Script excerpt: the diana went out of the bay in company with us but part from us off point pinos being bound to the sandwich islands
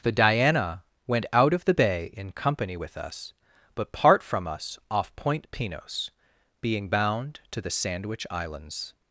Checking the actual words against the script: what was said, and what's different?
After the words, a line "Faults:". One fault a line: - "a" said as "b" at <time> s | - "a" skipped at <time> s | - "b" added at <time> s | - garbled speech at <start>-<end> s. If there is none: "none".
the diana went out of the bay in company with us but part from us off point pinos being bound to the sandwich islands
Faults:
none